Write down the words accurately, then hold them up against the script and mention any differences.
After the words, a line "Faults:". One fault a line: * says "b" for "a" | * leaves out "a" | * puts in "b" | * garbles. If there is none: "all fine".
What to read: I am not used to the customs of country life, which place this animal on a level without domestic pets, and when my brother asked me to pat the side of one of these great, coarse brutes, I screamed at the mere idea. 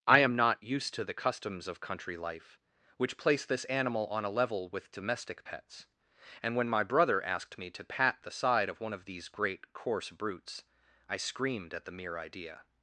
I am not used to the customs of country life, which place this animal on a level with domestic pets, and when my brother asked me to pat the side of one of these great, coarse brutes, I screamed at the mere idea.
Faults:
* says "with" for "without"